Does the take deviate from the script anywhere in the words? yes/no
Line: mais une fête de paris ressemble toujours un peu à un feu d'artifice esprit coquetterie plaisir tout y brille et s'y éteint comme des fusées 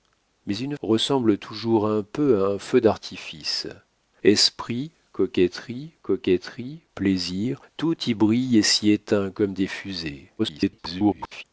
yes